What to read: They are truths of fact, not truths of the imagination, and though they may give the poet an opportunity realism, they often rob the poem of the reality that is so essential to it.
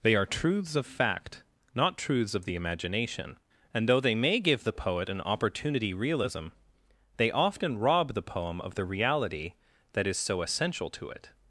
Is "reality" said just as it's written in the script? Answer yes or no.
yes